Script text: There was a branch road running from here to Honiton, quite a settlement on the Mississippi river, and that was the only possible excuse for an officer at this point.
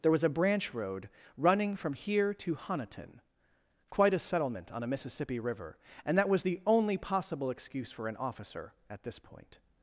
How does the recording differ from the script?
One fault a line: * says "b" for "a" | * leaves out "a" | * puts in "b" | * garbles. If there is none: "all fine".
* says "a" for "the"